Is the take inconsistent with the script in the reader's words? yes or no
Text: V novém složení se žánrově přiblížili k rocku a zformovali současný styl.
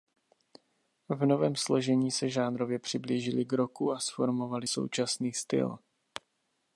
no